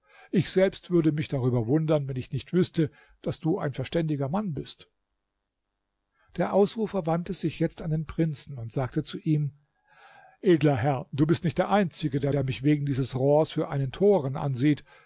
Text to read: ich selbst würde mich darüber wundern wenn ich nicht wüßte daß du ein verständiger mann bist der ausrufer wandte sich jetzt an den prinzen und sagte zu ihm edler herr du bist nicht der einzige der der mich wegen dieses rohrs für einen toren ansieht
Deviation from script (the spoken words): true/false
false